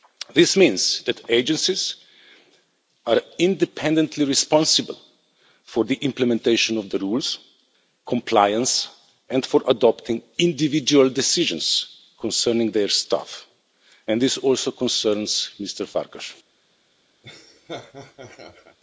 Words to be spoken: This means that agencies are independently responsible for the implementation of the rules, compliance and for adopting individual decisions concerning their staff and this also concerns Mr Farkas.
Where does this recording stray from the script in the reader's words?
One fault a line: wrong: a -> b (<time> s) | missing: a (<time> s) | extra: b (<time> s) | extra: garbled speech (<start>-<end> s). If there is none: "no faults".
no faults